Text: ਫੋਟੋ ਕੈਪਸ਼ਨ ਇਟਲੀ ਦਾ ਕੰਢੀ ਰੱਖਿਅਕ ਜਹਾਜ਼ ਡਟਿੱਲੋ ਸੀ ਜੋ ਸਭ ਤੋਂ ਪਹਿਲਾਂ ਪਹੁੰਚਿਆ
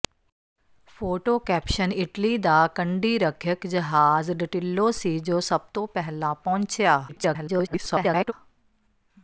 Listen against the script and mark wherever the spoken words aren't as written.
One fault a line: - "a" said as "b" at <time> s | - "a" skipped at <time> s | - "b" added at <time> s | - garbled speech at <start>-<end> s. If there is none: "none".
- garbled speech at 7.1-8.3 s